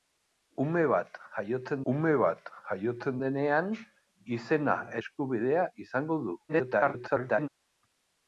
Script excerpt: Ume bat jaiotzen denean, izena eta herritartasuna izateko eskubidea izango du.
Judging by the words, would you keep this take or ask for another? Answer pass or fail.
fail